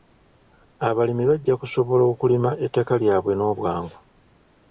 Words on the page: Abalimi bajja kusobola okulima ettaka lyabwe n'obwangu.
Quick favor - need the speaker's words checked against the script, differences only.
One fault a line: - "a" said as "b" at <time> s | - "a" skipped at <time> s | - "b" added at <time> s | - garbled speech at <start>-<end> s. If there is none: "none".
none